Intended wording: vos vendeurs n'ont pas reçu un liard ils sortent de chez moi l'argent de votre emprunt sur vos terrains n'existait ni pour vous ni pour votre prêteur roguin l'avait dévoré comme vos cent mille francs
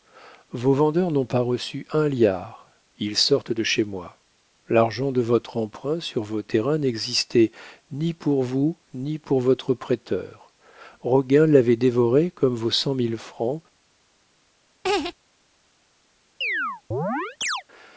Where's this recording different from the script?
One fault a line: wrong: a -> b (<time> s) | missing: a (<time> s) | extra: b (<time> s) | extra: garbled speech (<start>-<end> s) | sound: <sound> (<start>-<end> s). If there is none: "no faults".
sound: laugh (14.8-15.1 s)
sound: chirp (16.4-17.6 s)